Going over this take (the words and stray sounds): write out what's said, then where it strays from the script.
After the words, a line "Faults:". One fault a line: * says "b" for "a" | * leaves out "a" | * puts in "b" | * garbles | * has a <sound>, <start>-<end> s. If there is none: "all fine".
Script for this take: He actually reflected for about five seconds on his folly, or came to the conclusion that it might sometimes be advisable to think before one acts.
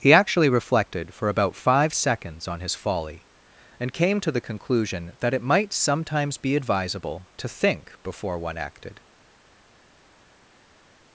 He actually reflected for about five seconds on his folly, and came to the conclusion that it might sometimes be advisable to think before one acted.
Faults:
* says "and" for "or"
* says "acted" for "acts"